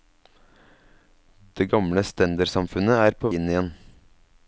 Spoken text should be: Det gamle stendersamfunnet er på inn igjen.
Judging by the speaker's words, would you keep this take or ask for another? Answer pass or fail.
pass